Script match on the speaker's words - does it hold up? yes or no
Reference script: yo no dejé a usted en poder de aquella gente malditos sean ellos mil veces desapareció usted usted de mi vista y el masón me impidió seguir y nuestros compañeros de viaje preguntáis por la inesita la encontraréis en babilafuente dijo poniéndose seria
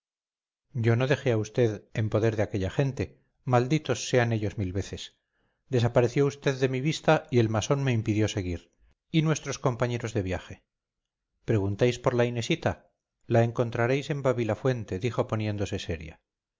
no